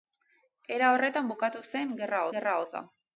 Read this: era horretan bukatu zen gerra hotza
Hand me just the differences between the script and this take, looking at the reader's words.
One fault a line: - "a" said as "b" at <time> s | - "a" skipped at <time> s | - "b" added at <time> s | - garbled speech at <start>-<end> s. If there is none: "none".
- "gerra" added at 2.4 s